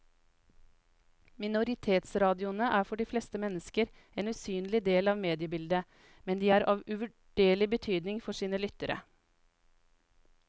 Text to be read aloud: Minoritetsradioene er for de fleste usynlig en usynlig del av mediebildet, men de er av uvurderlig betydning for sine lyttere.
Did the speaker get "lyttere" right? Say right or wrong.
right